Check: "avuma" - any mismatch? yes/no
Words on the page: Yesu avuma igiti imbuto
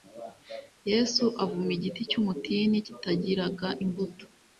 no